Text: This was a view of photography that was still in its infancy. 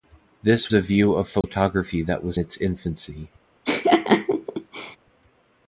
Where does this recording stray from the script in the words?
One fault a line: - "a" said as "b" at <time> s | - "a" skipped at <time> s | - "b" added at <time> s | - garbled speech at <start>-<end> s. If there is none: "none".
- "was" skipped at 0.7 s
- "still in" skipped at 2.4 s